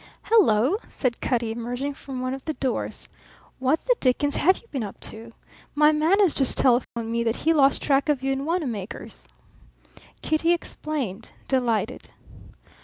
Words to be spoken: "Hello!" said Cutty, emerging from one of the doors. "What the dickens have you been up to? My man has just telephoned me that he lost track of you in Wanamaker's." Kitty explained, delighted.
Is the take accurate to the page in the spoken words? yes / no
yes